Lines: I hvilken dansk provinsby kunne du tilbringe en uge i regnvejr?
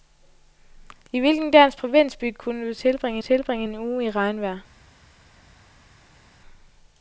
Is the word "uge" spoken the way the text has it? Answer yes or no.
yes